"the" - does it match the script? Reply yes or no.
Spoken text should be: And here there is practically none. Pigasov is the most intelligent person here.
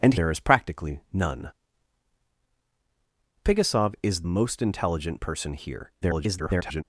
no